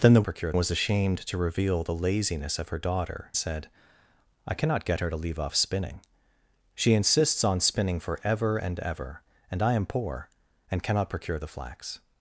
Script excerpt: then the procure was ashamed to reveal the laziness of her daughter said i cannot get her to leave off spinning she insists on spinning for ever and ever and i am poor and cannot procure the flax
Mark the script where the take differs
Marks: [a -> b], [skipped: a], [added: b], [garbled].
then the procure was ashamed to reveal the laziness of her daughter said i cannot get her to leave off spinning she insists on spinning for ever and ever and i am poor and cannot procure the flax